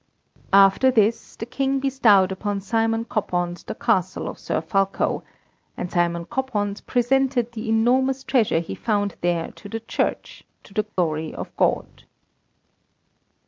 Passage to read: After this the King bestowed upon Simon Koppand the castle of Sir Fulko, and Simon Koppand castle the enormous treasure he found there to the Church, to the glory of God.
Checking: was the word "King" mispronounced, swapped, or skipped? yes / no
no